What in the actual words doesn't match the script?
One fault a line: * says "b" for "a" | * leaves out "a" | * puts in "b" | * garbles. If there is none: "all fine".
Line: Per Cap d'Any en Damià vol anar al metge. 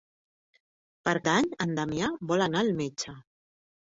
* leaves out "Cap"